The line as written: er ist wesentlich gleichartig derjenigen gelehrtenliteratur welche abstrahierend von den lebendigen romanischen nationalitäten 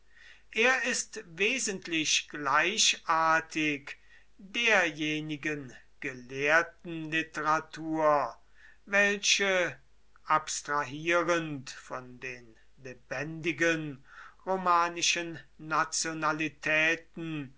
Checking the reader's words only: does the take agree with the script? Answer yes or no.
yes